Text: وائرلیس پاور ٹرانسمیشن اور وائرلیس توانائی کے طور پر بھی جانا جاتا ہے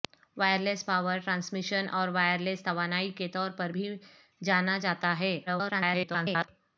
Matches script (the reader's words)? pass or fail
fail